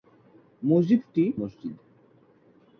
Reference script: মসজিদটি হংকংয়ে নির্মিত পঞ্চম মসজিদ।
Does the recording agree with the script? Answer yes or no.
no